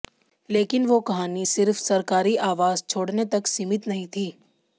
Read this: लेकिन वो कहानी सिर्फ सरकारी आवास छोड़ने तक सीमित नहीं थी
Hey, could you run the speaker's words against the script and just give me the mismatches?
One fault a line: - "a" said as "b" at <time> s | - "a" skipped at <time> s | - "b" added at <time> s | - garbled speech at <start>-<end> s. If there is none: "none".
none